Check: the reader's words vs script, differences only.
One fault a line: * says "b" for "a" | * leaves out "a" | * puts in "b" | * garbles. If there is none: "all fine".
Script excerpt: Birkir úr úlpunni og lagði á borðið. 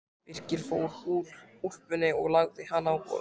* puts in "fór"
* puts in "hana"